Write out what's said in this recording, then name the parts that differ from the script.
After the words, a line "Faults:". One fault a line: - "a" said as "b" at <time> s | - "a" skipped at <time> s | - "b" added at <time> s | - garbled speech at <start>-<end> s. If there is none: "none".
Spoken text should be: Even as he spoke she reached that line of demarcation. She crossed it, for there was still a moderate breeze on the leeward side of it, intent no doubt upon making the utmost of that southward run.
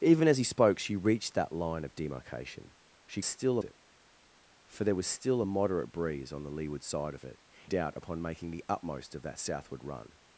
Even as he spoke she reached that line of demarcation. She still it, for there was still a moderate breeze on the leeward side of it, doubt upon making the utmost of that southward run.
Faults:
- "crossed" said as "still" at 3.2 s
- "intent no" skipped at 7.4 s